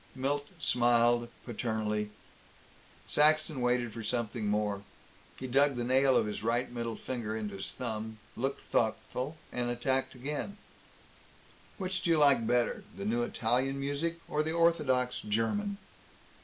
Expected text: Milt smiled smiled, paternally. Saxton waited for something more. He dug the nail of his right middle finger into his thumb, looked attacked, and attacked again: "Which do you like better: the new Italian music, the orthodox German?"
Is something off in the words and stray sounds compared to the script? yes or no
yes